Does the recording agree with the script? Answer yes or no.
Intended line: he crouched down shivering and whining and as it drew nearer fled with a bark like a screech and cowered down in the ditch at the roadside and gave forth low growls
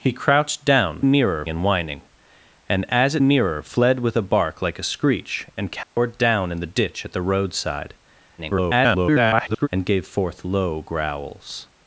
no